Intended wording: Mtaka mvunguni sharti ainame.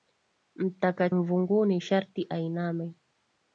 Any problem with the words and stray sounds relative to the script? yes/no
no